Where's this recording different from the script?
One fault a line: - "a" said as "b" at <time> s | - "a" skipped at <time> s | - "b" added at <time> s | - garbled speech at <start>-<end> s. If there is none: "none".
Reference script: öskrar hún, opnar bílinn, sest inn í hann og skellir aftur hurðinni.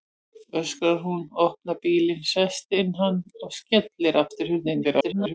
- garbled speech at 4.8-5.3 s